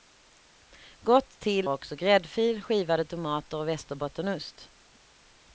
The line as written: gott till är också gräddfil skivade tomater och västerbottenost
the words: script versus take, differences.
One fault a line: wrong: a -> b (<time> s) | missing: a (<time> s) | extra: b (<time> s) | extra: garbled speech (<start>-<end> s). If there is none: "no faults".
missing: är (1.7 s)